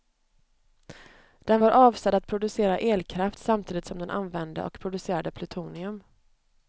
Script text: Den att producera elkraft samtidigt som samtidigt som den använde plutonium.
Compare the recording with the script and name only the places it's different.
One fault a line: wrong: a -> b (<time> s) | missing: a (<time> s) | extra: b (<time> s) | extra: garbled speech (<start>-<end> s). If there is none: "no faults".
extra: var avsedd (1.6 s)
wrong: samtidigt som den använde -> den använde och producerade (4.0 s)